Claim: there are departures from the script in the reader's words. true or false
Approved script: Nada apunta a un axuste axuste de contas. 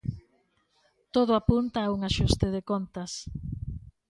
true